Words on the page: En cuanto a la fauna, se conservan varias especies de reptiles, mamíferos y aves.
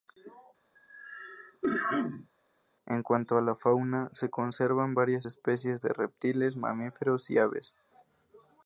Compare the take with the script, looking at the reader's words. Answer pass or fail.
pass